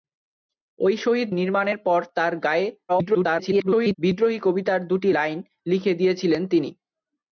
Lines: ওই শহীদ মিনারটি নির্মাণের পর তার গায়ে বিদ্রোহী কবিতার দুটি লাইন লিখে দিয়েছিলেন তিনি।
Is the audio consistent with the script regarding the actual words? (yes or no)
no